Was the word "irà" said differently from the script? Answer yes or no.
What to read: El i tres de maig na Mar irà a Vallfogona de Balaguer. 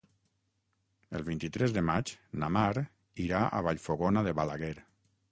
no